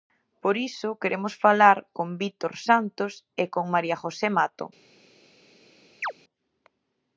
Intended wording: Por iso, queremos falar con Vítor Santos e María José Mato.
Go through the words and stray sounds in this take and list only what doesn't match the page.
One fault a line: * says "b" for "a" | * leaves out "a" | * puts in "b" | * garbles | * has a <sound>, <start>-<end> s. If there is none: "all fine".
* puts in "con"
* has a chirp, 6.0-6.1 s